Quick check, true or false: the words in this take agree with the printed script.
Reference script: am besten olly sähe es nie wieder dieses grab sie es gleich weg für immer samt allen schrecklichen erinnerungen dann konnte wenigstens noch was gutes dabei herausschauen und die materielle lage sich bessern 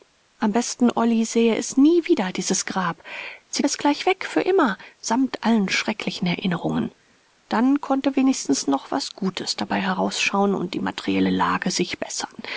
true